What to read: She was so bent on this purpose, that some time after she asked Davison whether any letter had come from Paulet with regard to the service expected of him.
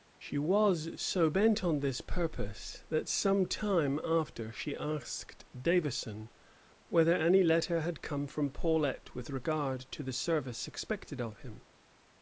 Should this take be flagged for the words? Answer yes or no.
no